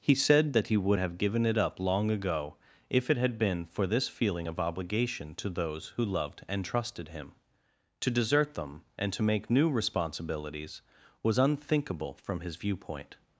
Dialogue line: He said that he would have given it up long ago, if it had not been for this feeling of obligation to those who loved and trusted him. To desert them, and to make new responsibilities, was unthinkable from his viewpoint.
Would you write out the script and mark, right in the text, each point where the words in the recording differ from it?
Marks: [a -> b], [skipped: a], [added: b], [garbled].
He said that he would have given it up long ago, if it had [skipped: not] been for this feeling of obligation to those who loved and trusted him. To desert them, and to make new responsibilities, was unthinkable from his viewpoint.